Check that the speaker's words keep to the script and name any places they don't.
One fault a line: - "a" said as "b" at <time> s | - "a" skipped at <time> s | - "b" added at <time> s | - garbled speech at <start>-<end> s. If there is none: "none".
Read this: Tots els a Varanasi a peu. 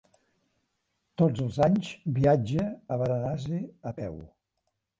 - "anys viatja" added at 1.7 s